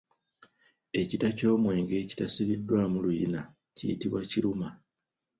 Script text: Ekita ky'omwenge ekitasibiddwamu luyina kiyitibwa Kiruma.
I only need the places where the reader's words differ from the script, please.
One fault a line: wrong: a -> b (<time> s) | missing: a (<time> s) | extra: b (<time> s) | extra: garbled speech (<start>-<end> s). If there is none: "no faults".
no faults